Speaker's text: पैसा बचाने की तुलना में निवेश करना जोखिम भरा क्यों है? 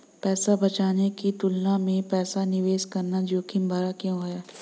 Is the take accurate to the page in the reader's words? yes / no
no